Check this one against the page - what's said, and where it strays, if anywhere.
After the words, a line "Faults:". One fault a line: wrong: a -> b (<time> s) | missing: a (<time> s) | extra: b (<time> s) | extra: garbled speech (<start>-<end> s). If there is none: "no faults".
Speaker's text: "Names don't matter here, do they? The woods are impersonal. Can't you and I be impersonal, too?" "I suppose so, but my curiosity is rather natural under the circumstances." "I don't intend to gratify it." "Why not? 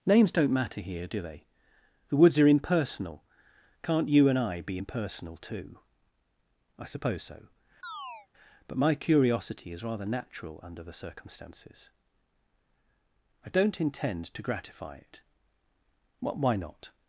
"Names don't matter here, do they? The woods are impersonal. Can't you and I be impersonal, too?" "I suppose so, but my curiosity is rather natural under the circumstances." "I don't intend to gratify it." "Why not?
Faults:
no faults